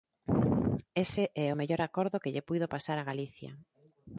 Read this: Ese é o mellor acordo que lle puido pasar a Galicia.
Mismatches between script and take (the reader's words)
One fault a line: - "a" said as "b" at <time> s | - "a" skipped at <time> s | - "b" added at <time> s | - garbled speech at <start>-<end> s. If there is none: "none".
none